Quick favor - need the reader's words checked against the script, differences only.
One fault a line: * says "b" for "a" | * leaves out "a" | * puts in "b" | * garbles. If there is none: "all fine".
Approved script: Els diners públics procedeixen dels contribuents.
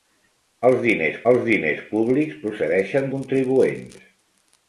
* puts in "els diners"
* leaves out "dels"